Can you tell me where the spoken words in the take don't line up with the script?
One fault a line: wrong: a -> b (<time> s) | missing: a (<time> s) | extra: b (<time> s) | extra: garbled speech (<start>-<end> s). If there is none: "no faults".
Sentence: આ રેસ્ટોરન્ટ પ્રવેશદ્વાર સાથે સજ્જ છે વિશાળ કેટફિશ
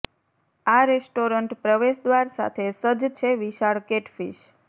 no faults